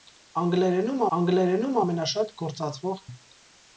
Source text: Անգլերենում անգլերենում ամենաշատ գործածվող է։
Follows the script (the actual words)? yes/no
yes